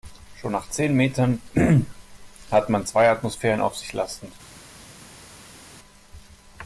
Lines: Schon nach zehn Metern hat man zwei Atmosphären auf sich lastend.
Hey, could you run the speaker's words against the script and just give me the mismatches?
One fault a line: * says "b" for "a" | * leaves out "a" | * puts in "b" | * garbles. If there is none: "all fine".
all fine